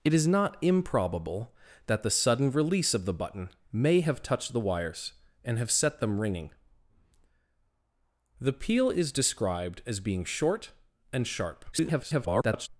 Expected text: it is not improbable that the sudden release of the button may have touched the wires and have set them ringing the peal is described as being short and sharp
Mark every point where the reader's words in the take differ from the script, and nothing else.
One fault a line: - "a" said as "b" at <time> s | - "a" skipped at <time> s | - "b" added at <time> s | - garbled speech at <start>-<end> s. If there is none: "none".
- garbled speech at 11.7-12.7 s